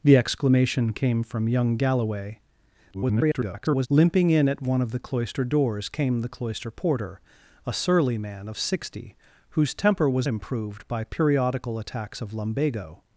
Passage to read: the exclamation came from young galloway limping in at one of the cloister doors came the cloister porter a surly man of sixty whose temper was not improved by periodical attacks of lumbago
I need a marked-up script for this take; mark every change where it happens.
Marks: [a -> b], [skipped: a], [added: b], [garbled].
the exclamation came from young galloway [garbled] limping in at one of the cloister doors came the cloister porter a surly man of sixty whose temper was [skipped: not] improved by periodical attacks of lumbago